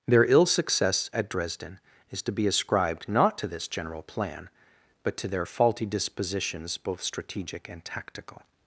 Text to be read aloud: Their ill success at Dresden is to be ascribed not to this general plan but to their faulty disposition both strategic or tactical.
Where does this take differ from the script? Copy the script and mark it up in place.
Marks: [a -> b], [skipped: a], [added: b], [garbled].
Their ill success at Dresden is to be ascribed not to this general plan but to their faulty [disposition -> dispositions] both strategic [or -> and] tactical.